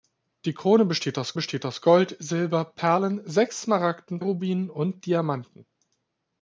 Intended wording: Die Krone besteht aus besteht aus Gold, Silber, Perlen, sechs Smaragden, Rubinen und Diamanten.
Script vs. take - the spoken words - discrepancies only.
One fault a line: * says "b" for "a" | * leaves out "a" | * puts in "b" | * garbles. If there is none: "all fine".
all fine